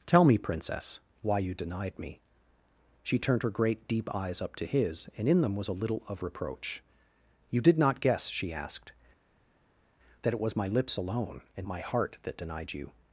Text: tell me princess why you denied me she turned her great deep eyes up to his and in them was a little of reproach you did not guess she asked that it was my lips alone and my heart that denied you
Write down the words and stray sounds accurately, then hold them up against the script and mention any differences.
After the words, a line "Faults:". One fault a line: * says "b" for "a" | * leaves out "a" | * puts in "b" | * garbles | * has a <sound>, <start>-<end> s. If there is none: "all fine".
tell me princess why you denied me she turned her great deep eyes up to his and in them was a little of reproach you did not guess she asked that it was my lips alone and my heart that denied you
Faults:
all fine